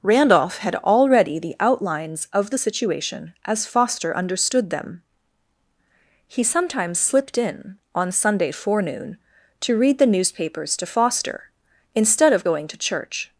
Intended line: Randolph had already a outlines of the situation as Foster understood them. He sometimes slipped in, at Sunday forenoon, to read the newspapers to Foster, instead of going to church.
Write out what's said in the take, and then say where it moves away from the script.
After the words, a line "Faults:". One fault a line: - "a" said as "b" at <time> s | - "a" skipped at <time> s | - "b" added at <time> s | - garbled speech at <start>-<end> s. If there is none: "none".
Randolph had already the outlines of the situation as Foster understood them. He sometimes slipped in, on Sunday forenoon, to read the newspapers to Foster, instead of going to church.
Faults:
- "a" said as "the" at 1.4 s
- "at" said as "on" at 7.9 s